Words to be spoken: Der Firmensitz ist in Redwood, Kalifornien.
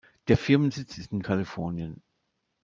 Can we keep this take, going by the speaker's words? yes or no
no